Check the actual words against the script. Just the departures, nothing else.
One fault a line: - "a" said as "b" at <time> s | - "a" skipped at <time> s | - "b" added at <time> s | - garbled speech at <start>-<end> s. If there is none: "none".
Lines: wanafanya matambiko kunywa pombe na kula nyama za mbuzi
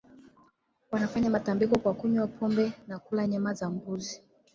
- "kwa" added at 1.8 s